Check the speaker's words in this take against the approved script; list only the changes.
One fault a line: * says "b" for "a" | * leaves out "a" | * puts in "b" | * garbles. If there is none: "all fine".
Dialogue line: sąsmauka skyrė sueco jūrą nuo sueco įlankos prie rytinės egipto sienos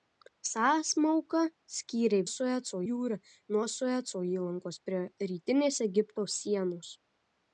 all fine